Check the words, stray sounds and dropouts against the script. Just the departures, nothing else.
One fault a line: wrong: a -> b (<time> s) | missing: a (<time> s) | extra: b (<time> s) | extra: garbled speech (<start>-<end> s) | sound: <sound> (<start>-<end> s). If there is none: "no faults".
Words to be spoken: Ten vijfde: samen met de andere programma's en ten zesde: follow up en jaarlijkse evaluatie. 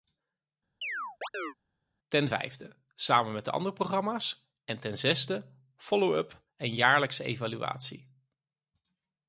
sound: chirp (0.8-1.5 s)